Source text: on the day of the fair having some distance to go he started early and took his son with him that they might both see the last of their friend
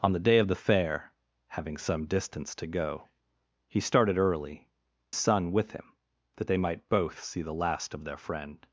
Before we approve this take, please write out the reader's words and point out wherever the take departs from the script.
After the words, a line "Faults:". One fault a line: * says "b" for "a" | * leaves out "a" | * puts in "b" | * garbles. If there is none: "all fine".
on the day of the fair having some distance to go he started early son with him that they might both see the last of their friend
Faults:
* leaves out "and took his"